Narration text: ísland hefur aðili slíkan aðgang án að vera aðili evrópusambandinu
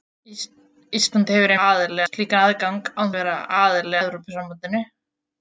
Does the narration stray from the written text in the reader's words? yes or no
no